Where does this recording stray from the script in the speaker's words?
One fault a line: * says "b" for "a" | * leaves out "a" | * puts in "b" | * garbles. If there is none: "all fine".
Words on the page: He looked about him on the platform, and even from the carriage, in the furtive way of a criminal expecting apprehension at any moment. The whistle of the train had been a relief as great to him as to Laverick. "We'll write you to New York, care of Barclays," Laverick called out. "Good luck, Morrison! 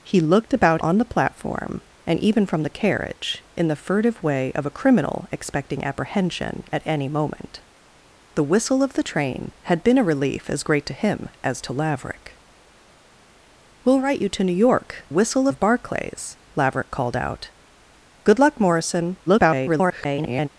* leaves out "him"
* says "whistle" for "care"
* garbles